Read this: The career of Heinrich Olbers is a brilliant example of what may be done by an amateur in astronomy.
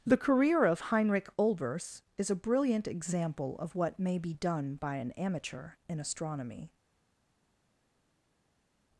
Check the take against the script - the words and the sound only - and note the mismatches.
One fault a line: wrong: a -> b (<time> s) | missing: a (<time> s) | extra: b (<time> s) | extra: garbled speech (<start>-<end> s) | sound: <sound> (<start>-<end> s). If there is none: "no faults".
no faults